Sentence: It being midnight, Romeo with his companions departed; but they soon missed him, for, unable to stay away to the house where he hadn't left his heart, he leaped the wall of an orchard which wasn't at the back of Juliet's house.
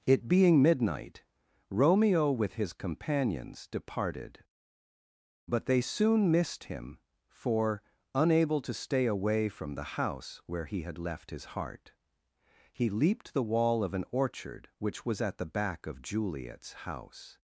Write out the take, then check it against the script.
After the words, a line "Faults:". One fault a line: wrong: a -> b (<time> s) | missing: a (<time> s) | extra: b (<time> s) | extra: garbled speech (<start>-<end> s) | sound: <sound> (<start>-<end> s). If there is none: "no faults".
It being midnight, Romeo with his companions departed; but they soon missed him, for, unable to stay away from the house where he had left his heart, he leaped the wall of an orchard which was at the back of Juliet's house.
Faults:
wrong: to -> from (9.5 s)
wrong: hadn't -> had (10.8 s)
wrong: wasn't -> was (15.1 s)